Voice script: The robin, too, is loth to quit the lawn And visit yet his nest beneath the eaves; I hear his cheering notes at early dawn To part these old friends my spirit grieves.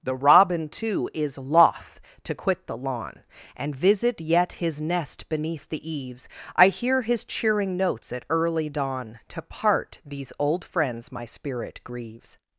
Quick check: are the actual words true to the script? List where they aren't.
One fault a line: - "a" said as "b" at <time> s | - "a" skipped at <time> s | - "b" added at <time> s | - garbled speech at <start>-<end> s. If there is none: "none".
none